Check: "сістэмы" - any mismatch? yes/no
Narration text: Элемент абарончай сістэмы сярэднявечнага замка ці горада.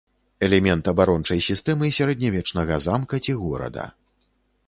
no